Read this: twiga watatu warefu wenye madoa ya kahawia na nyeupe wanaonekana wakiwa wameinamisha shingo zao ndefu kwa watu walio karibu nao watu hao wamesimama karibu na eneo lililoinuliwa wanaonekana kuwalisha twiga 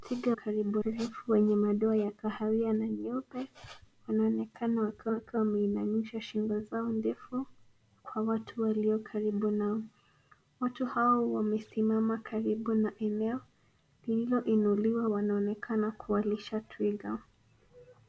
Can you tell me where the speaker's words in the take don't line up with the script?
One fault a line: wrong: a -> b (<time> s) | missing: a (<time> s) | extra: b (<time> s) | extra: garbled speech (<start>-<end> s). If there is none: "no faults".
wrong: watatu -> karibu (0.3 s)
extra: wakiwa (5.1 s)